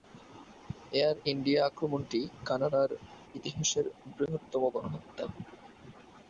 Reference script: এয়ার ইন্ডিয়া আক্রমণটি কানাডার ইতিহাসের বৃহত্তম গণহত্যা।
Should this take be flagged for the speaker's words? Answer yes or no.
no